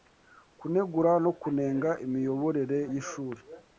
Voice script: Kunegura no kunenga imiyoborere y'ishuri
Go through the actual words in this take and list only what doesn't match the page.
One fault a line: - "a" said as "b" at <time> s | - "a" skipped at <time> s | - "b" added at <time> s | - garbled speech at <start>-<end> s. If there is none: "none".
none